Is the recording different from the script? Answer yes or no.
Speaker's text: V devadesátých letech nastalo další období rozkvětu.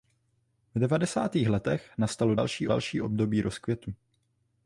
yes